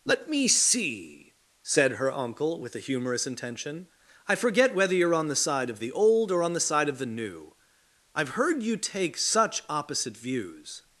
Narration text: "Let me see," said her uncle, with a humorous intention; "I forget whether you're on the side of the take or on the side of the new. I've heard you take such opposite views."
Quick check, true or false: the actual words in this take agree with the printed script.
false